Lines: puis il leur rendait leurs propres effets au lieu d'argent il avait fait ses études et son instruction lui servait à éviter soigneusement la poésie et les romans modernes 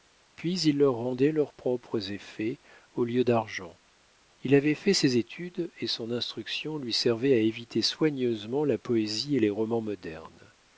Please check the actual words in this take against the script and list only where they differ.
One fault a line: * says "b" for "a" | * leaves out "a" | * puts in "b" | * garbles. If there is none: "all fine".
all fine